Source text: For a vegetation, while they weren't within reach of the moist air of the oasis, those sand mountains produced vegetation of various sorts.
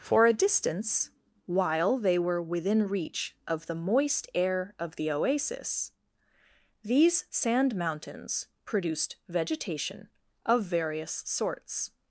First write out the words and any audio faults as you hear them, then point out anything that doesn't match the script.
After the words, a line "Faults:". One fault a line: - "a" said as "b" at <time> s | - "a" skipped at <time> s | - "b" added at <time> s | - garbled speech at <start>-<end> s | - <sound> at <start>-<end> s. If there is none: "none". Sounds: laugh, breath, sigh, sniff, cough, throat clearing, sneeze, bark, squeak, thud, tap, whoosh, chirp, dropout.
For a distance, while they were within reach of the moist air of the oasis, these sand mountains produced vegetation of various sorts.
Faults:
- "vegetation" said as "distance" at 0.3 s
- "weren't" said as "were" at 2.2 s
- "those" said as "these" at 6.8 s